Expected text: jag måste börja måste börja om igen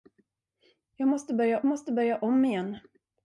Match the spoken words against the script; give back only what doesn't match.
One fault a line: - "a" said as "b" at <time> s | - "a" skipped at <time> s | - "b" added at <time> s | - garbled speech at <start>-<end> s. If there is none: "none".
none